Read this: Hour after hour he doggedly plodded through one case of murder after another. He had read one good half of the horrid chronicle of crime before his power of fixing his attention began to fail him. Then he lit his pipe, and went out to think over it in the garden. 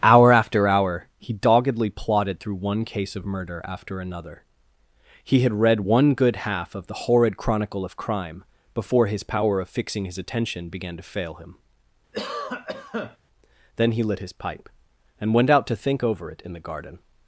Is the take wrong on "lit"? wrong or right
right